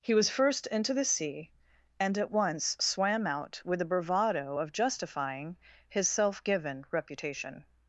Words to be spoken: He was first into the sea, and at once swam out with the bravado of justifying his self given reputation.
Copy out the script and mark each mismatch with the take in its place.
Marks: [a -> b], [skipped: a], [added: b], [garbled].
He was first into the sea, and at once swam out with the bravado of justifying his self given reputation.